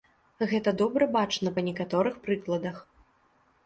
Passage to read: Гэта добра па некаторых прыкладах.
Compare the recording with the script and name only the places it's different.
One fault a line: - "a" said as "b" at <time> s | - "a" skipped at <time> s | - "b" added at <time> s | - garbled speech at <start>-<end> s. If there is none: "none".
- "бачна" added at 1.2 s